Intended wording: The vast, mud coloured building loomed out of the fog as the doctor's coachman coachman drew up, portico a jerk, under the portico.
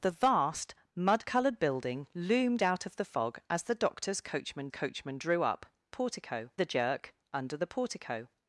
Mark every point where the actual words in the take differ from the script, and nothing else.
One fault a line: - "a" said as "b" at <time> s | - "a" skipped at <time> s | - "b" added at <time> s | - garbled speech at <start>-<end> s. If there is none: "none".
none